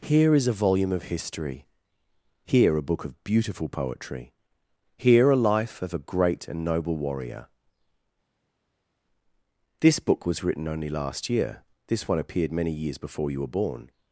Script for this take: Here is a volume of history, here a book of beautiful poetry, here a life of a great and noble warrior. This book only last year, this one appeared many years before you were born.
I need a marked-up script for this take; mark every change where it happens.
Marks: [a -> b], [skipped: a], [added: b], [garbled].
Here is a volume of history, here a book of beautiful poetry, here a life of a great and noble warrior. This book [added: was written] only last year, this one appeared many years before you were born.